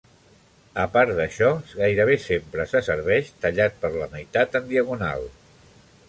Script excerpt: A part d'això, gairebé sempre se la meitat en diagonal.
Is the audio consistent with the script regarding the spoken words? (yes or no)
no